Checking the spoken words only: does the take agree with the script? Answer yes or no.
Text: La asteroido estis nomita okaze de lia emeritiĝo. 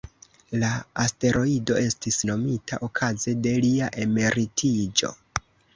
yes